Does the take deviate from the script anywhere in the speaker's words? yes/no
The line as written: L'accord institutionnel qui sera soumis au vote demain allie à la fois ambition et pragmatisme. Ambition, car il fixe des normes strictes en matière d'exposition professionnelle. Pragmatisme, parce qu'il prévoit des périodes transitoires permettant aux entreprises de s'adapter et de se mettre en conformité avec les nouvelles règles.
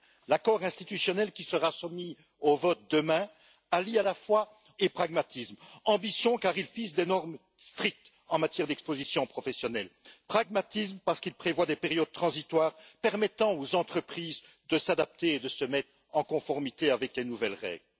yes